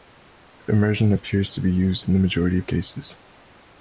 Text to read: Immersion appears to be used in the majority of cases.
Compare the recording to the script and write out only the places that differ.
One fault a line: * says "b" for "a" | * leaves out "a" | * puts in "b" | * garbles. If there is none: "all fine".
all fine